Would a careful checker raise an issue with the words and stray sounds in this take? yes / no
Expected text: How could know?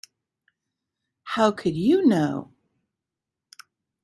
yes